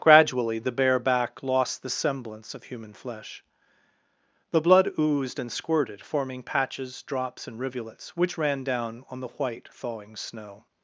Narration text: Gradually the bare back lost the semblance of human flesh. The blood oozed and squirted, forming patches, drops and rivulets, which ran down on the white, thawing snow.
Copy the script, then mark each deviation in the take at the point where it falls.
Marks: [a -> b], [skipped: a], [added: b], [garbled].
Gradually the bare back lost the semblance of human flesh. The blood oozed and squirted, forming patches, drops and rivulets, which ran down on the white, thawing snow.